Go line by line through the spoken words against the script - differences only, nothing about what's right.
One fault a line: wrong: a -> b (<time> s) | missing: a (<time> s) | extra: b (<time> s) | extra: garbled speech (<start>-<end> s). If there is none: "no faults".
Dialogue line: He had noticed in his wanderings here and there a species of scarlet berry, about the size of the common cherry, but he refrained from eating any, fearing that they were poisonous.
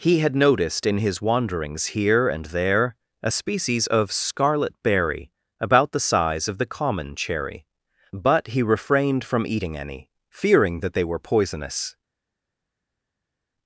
no faults